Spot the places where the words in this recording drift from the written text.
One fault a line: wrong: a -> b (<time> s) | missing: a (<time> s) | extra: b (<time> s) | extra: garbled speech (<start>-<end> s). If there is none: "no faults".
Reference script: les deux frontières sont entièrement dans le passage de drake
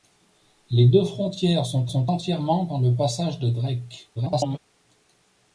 extra: sont (1.9 s)
extra: garbled speech (4.2-4.6 s)